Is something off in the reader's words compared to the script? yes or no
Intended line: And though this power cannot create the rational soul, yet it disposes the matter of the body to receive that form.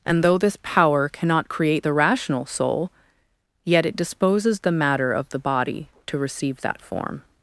no